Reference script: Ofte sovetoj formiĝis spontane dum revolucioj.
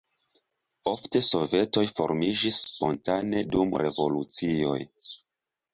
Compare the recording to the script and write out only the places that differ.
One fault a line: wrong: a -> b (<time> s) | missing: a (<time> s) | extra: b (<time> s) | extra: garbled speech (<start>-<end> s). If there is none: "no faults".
no faults